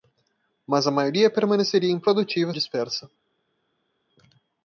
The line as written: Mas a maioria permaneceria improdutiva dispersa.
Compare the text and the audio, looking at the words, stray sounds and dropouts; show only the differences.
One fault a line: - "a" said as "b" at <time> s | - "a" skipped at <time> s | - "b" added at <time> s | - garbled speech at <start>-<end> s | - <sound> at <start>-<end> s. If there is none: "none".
none